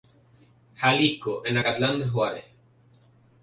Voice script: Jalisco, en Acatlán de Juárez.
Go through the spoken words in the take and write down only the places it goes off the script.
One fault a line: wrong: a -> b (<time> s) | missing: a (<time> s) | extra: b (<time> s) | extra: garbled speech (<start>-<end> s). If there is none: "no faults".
no faults